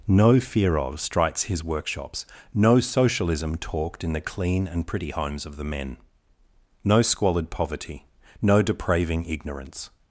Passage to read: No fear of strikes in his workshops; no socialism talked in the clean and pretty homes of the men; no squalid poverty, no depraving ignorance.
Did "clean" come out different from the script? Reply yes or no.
no